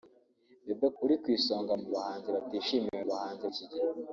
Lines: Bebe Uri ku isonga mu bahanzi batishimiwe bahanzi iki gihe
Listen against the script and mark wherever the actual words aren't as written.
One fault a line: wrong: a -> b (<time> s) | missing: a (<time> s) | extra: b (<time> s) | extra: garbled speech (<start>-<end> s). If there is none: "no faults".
no faults